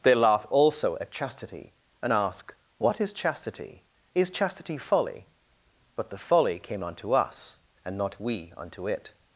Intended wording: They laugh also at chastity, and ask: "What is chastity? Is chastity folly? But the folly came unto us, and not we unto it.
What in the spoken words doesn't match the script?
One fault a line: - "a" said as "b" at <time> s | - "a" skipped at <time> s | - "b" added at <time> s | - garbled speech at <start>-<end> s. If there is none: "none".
none